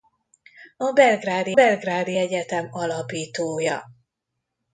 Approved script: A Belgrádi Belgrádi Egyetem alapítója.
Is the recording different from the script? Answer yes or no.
no